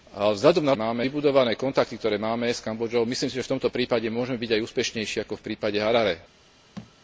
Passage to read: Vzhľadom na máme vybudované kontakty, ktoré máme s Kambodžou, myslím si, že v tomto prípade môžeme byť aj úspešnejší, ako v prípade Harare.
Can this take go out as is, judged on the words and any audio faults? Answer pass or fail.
fail